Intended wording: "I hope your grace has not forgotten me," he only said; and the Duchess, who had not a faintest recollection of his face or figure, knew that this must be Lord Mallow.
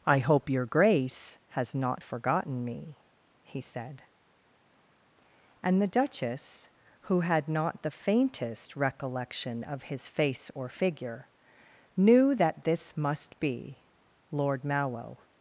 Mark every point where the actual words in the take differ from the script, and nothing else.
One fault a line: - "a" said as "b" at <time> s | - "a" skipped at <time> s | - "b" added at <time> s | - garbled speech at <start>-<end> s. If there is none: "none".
- "only" skipped at 3.6 s
- "a" said as "the" at 7.8 s